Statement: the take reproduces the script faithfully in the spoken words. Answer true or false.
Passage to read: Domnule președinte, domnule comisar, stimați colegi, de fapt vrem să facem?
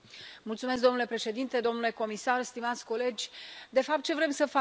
false